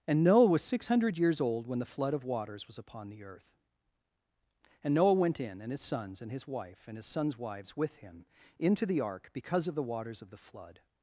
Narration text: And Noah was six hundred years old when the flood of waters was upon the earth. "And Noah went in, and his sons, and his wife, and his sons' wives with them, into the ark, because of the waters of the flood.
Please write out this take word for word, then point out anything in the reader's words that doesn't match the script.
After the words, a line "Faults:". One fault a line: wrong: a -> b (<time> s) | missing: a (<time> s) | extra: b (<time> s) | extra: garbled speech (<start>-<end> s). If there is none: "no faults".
And Noah was six hundred years old when the flood of waters was upon the earth. "And Noah went in, and his sons, and his wife, and his sons' wives with him, into the ark, because of the waters of the flood.
Faults:
wrong: them -> him (8.0 s)